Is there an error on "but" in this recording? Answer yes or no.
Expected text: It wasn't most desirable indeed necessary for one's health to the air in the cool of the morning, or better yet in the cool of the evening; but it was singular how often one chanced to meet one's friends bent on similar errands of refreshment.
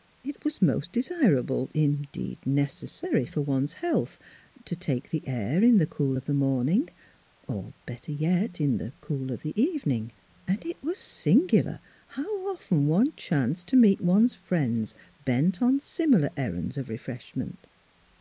yes